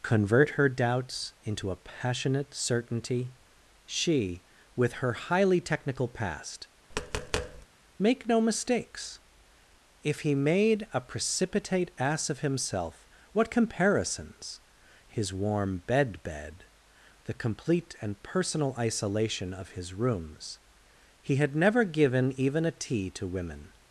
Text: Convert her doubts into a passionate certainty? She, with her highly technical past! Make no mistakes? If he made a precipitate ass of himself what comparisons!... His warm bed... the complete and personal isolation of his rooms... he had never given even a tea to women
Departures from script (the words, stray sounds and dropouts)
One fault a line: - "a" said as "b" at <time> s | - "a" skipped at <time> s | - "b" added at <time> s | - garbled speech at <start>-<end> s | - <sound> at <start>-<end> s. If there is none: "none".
- tap at 6.9-7.7 s
- "bed" added at 16.2 s